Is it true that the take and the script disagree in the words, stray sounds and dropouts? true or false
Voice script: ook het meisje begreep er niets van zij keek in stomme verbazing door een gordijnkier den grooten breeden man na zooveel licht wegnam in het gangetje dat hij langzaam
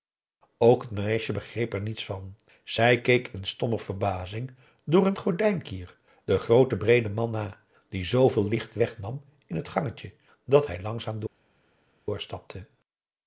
true